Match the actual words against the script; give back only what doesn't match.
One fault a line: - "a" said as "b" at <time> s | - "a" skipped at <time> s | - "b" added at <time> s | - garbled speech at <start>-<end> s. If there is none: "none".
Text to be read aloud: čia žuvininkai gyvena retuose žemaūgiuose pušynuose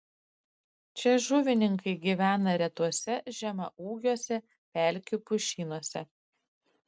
- "pelkių" added at 4.8 s